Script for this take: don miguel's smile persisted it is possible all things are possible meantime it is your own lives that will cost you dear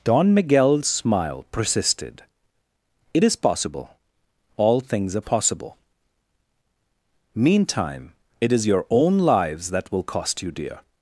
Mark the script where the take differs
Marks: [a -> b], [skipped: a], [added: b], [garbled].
don miguel's smile persisted it is possible all things are possible meantime it is your own lives that will cost you dear